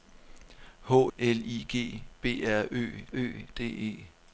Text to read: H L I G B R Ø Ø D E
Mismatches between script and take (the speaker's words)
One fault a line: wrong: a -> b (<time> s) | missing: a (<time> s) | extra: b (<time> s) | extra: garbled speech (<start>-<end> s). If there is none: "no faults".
no faults